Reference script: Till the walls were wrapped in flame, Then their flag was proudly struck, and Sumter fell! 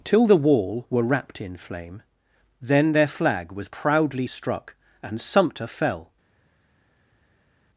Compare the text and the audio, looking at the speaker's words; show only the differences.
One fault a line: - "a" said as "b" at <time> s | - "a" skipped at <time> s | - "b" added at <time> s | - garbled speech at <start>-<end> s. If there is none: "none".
- "walls" said as "wall" at 0.3 s